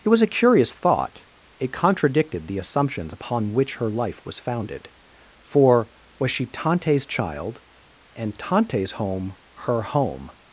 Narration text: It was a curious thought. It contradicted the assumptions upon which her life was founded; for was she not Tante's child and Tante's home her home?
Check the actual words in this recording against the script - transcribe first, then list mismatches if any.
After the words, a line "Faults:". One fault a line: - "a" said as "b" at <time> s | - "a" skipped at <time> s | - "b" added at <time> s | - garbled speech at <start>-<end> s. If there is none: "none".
It was a curious thought. It contradicted the assumptions upon which her life was founded; for was she Tante's child and Tante's home her home?
Faults:
- "not" skipped at 6.4 s